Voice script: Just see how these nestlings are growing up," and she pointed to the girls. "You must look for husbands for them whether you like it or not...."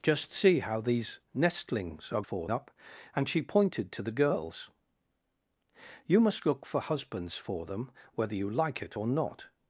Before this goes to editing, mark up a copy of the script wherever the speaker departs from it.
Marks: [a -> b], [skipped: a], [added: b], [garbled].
Just see how these nestlings are [growing -> for] up," and she pointed to the girls. "You must look for husbands for them whether you like it or not...."